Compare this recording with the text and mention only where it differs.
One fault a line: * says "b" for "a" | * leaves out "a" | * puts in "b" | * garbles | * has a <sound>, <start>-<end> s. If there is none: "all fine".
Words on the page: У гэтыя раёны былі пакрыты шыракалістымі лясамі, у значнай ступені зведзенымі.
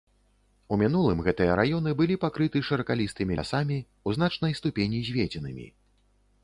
* puts in "мінулым"